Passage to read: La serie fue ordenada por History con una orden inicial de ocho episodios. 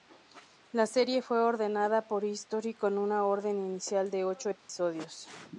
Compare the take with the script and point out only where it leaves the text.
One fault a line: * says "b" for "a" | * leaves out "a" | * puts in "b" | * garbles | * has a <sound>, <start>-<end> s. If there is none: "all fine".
* has a dropout, 4.6-4.7 s